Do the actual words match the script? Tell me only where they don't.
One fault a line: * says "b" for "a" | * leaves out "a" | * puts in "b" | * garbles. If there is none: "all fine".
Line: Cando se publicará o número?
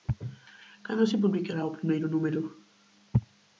* puts in "primeiro"